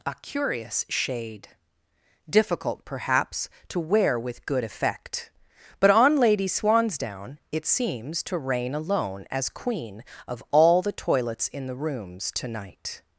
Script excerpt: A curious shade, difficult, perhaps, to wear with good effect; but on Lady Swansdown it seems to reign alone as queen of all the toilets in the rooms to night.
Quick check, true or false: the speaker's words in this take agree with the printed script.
true